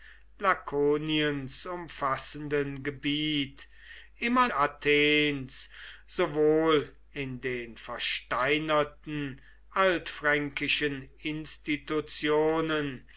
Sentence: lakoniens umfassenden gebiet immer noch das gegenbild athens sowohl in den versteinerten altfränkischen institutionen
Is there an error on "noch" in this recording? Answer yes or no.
yes